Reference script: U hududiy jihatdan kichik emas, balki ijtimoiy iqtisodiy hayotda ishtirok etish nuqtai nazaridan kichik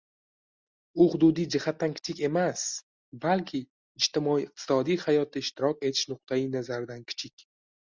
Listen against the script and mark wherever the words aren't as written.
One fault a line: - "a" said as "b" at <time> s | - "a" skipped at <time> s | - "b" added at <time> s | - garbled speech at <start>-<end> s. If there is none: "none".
none